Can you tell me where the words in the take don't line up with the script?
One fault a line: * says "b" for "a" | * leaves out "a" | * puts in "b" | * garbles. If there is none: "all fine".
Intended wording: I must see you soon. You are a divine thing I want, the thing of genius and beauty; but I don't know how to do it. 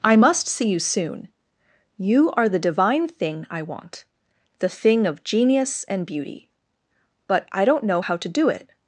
* says "the" for "a"